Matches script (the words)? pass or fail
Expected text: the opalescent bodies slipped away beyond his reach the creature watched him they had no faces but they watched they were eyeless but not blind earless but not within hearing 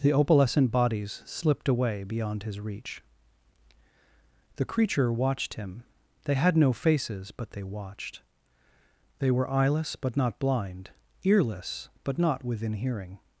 pass